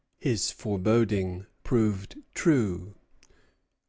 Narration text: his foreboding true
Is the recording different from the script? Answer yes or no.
yes